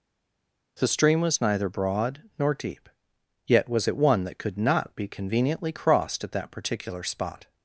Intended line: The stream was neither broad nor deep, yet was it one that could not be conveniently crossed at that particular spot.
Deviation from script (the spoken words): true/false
false